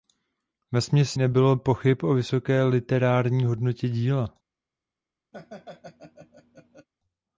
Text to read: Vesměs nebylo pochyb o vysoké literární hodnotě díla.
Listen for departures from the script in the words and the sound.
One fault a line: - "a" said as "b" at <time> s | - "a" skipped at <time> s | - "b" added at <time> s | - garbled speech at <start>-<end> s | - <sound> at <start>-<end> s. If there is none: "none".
- laugh at 5.3-6.9 s